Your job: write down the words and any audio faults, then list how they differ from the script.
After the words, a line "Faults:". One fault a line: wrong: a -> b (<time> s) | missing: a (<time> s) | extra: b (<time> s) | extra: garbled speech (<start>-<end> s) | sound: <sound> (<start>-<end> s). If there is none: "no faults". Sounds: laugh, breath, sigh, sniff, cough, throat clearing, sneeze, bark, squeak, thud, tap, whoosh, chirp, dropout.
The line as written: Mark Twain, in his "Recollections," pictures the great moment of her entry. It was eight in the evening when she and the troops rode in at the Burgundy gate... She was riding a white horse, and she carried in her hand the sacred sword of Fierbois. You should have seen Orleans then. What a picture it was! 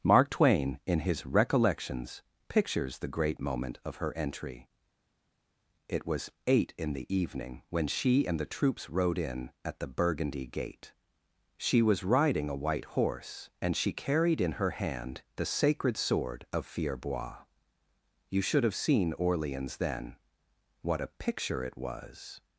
Mark Twain, in his "Recollections," pictures the great moment of her entry. It was eight in the evening when she and the troops rode in at the Burgundy gate... She was riding a white horse, and she carried in her hand the sacred sword of Fierbois. You should have seen Orleans then. What a picture it was!
Faults:
no faults